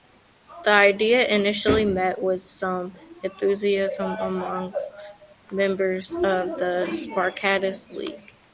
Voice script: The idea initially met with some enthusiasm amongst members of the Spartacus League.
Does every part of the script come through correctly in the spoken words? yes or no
yes